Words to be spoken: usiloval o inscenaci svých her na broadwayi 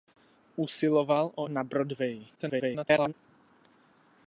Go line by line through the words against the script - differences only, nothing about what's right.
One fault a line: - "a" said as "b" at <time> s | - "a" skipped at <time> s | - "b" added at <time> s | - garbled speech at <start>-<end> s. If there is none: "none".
- "inscenaci svých her" skipped at 1.5 s
- garbled speech at 2.3-3.1 s